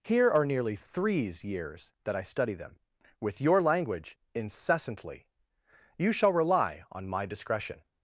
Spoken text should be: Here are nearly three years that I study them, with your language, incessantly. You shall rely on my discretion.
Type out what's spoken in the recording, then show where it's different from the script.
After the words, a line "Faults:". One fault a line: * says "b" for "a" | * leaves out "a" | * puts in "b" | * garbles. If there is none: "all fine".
Here are nearly threes years that I study them, with your language, incessantly. You shall rely on my discretion.
Faults:
* says "threes" for "three"